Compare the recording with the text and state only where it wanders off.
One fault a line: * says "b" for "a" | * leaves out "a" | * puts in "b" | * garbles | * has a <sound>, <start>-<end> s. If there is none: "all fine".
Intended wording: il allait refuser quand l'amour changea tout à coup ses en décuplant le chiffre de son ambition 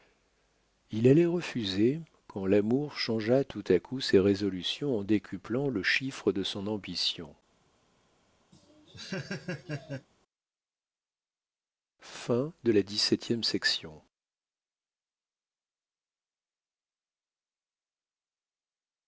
* puts in "résolutions"
* has a laugh, 8.5-10.1 s